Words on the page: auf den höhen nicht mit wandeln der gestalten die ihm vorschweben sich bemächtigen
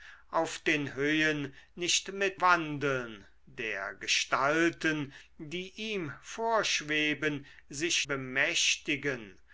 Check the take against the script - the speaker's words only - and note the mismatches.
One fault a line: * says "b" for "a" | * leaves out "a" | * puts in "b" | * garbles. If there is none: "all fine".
all fine